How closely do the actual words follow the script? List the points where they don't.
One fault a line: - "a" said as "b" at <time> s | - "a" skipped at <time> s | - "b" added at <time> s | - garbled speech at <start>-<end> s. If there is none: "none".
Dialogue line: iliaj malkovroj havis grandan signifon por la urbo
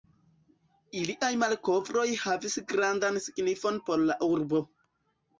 none